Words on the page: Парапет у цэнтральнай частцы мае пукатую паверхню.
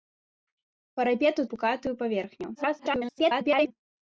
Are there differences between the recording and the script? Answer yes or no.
yes